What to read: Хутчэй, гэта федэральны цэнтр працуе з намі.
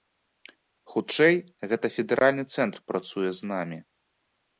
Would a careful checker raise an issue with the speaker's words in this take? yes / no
no